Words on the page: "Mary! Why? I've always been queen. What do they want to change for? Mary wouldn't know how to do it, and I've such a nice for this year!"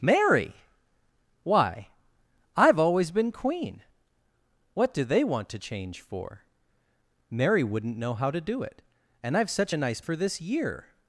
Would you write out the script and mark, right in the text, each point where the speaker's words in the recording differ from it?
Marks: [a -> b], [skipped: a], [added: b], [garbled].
"Mary! Why? I've always been queen. What do they want to change for? Mary wouldn't know how to do it, and I've such a nice for this year!"